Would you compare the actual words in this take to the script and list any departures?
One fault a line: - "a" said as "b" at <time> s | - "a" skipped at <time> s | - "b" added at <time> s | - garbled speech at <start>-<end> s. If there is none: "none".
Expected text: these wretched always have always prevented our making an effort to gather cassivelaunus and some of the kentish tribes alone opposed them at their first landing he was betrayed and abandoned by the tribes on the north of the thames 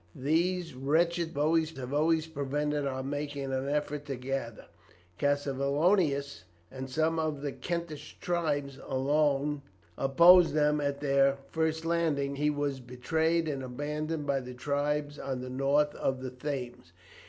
none